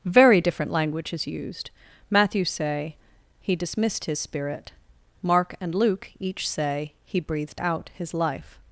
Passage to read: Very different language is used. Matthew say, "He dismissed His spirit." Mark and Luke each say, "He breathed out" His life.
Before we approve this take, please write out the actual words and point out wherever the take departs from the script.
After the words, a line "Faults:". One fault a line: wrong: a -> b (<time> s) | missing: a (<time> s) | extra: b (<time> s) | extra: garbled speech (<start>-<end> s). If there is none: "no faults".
Very different language is used. Matthew say, "He dismissed His spirit." Mark and Luke each say, "He breathed out" His life.
Faults:
no faults